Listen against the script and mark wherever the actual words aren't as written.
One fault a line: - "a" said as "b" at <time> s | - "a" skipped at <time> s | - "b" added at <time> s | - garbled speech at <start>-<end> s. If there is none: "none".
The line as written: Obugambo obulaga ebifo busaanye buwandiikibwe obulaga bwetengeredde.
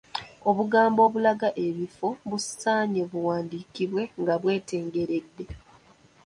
- "obulaga" said as "nga" at 4.2 s